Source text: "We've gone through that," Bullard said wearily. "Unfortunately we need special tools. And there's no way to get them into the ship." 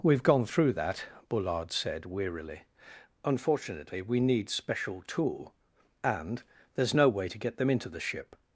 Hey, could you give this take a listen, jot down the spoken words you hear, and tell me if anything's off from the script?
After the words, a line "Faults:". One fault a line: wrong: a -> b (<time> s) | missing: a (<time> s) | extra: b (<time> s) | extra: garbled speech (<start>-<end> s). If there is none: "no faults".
"We've gone through that," Bullard said wearily. "Unfortunately we need special tool. And there's no way to get them into the ship."
Faults:
wrong: tools -> tool (5.0 s)